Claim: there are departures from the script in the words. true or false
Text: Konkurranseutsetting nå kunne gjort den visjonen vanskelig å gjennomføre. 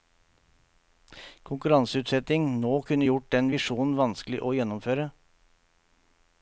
false